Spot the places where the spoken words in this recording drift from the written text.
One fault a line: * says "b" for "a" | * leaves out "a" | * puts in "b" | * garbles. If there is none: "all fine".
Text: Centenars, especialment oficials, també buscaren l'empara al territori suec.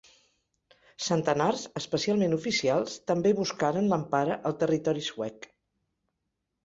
all fine